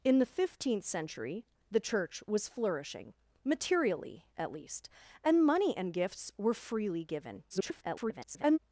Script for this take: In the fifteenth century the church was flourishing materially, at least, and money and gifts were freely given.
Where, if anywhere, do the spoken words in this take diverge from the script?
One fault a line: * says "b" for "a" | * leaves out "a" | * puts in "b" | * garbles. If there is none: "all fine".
* garbles